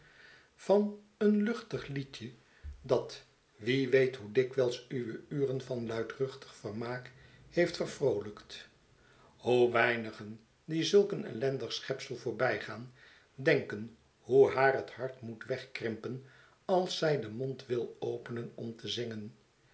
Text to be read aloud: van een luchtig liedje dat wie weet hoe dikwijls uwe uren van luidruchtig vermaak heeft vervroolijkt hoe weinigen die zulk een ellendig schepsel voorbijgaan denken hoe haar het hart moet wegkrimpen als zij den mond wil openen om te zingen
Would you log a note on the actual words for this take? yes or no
no